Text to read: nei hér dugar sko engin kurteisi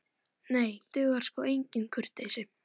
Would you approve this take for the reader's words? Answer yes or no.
no